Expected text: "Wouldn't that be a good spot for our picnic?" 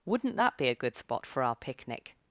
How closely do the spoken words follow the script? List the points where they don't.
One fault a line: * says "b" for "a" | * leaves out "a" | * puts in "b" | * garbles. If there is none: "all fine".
all fine